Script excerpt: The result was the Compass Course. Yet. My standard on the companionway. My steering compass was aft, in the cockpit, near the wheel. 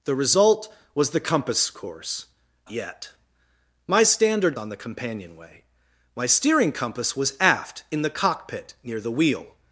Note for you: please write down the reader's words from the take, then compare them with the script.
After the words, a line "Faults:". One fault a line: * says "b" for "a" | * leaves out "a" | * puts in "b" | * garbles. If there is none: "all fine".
The result was the Compass Course. Yet. My standard on the companionway. My steering compass was aft, in the cockpit, near the wheel.
Faults:
all fine